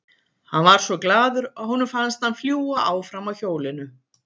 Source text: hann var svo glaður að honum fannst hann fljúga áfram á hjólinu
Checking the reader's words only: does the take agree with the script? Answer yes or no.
yes